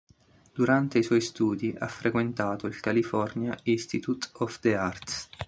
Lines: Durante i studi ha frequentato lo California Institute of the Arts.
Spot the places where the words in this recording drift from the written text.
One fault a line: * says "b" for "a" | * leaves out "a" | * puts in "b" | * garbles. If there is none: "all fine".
* puts in "suoi"
* says "il" for "lo"